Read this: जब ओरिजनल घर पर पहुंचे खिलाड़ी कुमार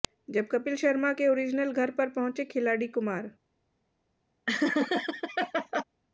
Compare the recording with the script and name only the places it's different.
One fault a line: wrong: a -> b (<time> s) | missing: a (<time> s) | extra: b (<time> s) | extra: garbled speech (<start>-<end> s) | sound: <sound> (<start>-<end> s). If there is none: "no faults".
extra: कपिल शर्मा के (0.5 s)
sound: laugh (4.5-5.8 s)